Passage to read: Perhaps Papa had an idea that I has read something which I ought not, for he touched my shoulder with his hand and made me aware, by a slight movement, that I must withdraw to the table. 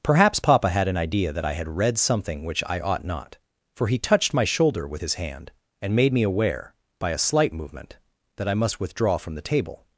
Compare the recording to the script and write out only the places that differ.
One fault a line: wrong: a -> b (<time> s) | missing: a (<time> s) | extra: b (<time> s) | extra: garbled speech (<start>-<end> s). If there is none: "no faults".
wrong: has -> had (1.5 s)
wrong: to -> from (9.2 s)